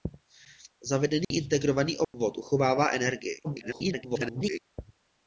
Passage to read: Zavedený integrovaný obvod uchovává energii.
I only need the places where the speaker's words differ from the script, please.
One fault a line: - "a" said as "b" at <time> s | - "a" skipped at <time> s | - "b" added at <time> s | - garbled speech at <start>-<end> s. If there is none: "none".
- garbled speech at 3.4-4.6 s